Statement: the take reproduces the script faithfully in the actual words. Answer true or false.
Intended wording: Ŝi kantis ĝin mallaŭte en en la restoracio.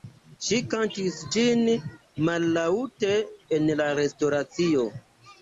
false